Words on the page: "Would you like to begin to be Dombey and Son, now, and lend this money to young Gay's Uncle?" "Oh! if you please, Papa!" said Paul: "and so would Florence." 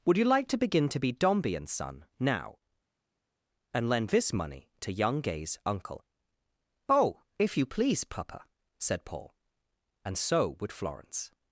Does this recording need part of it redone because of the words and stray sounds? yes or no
no